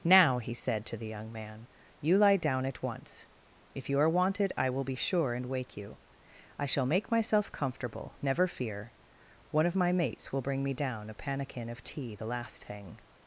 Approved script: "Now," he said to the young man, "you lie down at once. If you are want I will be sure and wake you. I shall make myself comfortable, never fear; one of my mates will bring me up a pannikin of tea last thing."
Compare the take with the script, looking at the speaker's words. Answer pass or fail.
fail